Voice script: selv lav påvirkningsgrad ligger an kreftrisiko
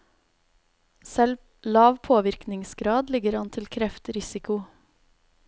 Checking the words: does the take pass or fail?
fail